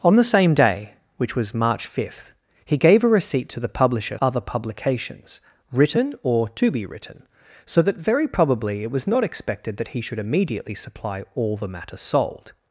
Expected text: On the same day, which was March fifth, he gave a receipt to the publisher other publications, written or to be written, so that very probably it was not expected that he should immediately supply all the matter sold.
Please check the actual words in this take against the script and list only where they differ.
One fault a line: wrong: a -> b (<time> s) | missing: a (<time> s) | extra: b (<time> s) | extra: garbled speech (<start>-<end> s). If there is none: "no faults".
no faults